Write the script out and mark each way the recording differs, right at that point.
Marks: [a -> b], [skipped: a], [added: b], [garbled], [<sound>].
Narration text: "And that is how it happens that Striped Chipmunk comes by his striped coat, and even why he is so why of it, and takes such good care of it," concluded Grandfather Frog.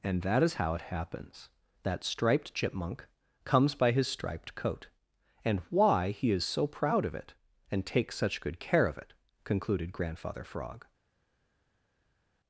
"And that is how it happens that Striped Chipmunk comes by his striped coat, and [skipped: even] why he is so [why -> proud] of it, and takes such good care of it," concluded Grandfather Frog.